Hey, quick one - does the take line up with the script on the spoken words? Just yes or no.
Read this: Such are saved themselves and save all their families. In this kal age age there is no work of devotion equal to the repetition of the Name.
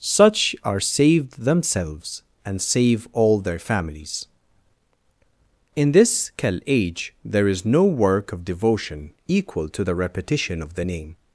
no